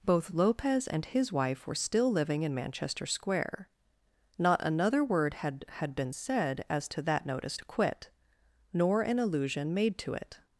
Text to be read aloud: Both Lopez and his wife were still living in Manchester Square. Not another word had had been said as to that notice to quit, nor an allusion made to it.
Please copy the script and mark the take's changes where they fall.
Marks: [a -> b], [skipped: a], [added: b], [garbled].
Both Lopez and his wife were still living in Manchester Square. Not another word had had been said as to that notice to quit, nor an allusion made to it.